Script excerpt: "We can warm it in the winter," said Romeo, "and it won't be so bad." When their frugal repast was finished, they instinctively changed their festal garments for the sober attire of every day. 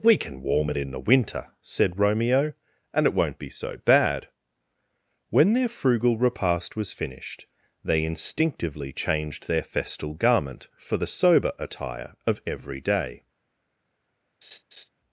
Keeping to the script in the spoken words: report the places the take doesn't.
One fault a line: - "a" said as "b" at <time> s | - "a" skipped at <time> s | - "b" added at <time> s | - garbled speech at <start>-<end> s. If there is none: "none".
- "garments" said as "garment" at 10.1 s